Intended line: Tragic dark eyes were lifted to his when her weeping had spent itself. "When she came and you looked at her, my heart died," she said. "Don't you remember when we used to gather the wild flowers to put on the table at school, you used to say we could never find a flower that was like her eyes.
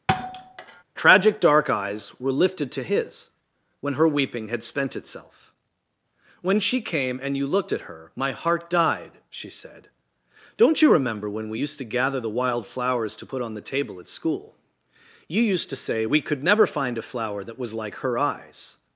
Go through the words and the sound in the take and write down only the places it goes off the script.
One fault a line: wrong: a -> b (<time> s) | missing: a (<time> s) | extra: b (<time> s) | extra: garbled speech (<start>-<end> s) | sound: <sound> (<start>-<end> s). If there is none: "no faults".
sound: thud (0.1-0.8 s)